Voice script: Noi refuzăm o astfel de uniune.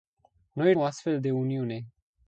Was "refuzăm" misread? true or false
true